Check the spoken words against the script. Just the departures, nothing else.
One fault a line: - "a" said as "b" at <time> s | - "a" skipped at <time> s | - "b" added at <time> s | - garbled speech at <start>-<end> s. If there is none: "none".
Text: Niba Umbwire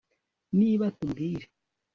none